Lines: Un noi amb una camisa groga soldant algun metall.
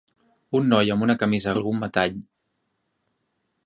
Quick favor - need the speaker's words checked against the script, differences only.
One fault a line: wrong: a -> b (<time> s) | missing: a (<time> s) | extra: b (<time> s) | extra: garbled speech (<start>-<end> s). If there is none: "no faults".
missing: groga soldant (1.5 s)